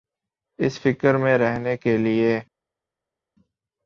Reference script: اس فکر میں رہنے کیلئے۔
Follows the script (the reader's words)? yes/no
yes